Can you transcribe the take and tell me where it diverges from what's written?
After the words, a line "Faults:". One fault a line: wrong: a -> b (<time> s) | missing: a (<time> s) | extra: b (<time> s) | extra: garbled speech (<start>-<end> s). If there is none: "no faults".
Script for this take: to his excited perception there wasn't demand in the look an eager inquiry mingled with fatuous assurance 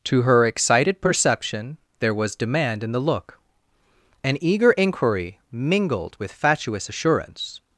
to her excited perception there was demand in the look an eager inquiry mingled with fatuous assurance
Faults:
wrong: his -> her (0.2 s)
wrong: wasn't -> was (2.1 s)